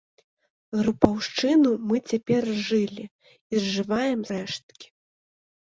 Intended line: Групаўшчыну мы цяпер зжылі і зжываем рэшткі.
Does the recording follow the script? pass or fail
pass